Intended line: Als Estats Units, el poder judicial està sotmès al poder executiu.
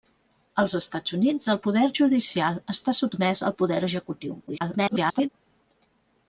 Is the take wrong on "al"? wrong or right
right